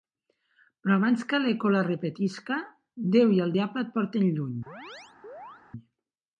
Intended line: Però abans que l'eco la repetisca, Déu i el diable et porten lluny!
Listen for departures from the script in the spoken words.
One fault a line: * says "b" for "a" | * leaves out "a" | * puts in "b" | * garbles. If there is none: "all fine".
all fine